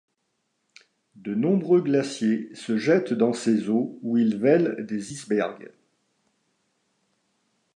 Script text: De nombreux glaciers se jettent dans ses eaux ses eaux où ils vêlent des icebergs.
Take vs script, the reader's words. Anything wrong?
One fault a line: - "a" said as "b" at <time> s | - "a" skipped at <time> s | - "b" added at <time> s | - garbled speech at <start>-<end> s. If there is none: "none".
- "ses eaux" skipped at 4.0 s